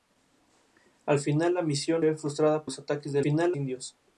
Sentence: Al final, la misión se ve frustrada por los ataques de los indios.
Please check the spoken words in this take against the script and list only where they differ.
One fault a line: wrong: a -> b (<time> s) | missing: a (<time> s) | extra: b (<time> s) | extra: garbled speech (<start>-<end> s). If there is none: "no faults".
missing: se (2.0 s)
missing: por (2.7 s)
wrong: los -> final (3.2 s)